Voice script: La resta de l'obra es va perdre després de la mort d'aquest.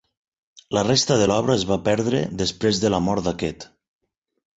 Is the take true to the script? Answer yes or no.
yes